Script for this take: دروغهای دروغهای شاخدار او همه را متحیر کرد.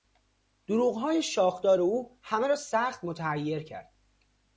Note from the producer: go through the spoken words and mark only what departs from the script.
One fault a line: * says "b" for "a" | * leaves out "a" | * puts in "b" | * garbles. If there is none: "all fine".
* leaves out "دروغهای"
* puts in "سخت"